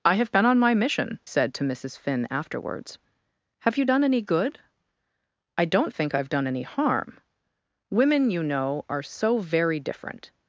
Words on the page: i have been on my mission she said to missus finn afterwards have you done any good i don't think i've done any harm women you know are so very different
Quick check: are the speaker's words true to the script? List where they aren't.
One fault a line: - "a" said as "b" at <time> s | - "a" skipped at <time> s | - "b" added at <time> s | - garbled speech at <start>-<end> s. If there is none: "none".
- "she" skipped at 1.2 s